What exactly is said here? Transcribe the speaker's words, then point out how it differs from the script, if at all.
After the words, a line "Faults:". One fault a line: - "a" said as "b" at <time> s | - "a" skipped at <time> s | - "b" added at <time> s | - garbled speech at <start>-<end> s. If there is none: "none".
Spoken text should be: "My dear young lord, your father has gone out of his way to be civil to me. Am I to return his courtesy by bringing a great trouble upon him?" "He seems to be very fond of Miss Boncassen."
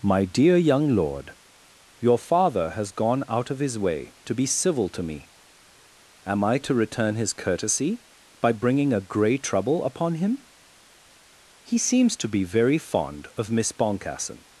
"My dear young lord, your father has gone out of his way to be civil to me. Am I to return his courtesy by bringing a grey trouble upon him?" "He seems to be very fond of Miss Boncassen."
Faults:
- "great" said as "grey" at 9.0 s